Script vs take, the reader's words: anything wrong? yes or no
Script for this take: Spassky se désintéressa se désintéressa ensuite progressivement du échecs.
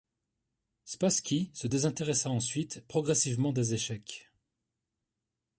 yes